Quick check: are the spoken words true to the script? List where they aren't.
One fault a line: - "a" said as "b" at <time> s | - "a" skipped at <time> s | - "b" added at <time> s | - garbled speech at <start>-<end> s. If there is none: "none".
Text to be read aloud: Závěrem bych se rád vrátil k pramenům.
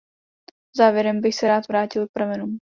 none